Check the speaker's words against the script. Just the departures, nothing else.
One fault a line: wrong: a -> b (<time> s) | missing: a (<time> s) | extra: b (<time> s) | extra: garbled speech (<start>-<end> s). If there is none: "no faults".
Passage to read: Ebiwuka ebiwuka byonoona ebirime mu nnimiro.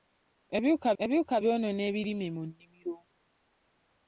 no faults